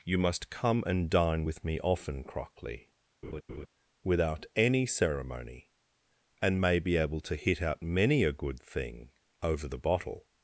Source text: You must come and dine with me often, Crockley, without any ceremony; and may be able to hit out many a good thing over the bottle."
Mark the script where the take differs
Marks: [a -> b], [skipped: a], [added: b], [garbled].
You must come and dine with me often, Crockley, without any ceremony; and may be able to hit out many a good thing over the bottle."